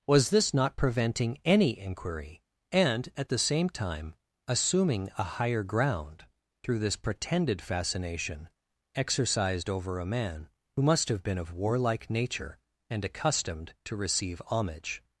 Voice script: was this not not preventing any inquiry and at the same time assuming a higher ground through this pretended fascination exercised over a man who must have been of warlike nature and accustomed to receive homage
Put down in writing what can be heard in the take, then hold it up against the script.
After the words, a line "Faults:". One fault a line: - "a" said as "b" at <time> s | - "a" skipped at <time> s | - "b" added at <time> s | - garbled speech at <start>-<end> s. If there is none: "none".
was this not preventing any inquiry and at the same time assuming a higher ground through this pretended fascination exercised over a man who must have been of warlike nature and accustomed to receive homage
Faults:
- "not" skipped at 0.8 s